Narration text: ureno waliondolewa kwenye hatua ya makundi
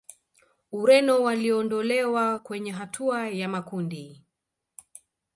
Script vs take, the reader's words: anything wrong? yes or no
no